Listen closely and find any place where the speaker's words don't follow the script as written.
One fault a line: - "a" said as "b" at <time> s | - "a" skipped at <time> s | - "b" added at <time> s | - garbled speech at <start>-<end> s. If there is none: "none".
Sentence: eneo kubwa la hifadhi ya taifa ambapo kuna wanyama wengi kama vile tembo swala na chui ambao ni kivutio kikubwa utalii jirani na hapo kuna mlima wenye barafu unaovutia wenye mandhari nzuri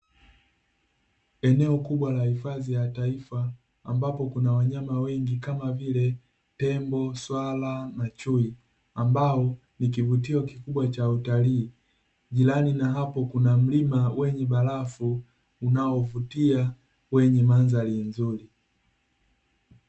- "cha" added at 10.9 s